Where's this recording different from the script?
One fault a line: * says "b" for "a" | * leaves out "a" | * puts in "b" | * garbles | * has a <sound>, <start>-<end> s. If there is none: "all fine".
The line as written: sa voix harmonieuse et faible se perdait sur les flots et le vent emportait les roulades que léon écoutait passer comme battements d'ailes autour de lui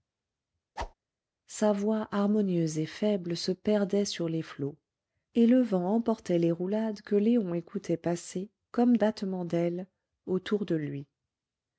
* has a whoosh, 0.8-0.9 s